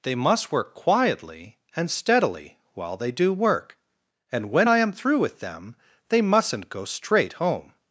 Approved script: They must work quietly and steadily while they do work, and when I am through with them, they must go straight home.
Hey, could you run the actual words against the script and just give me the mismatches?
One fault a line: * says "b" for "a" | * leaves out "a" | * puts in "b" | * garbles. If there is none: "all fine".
* says "mustn't" for "must"